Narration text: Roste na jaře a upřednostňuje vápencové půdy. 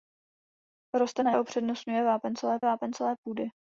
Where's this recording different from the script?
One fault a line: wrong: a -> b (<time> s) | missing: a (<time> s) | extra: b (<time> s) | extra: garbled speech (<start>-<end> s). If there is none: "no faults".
missing: jaře (1.3 s)
extra: vápencové (2.6 s)